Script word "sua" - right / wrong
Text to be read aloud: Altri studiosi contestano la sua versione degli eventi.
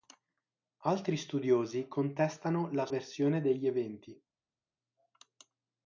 wrong